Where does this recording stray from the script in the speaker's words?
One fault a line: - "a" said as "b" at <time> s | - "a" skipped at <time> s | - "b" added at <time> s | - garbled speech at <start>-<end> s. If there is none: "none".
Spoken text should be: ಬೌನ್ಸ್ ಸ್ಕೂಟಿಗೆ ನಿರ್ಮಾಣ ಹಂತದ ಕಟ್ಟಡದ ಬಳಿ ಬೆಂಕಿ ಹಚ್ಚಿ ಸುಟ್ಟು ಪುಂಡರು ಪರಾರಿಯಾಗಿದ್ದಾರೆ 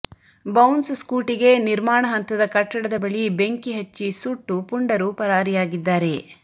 none